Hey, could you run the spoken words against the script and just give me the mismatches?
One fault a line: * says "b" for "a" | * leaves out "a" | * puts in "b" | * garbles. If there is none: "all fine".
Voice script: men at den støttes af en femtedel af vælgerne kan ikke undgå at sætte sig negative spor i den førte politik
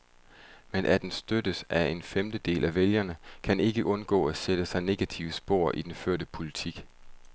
all fine